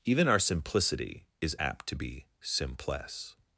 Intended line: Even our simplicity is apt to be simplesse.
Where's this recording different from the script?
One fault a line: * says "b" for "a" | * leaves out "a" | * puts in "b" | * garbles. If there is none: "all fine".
all fine